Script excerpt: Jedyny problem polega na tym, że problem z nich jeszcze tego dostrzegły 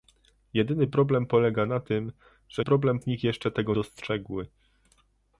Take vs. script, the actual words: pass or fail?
pass